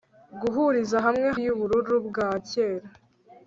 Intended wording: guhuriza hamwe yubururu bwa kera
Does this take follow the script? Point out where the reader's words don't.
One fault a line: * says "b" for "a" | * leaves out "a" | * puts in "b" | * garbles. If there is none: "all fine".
all fine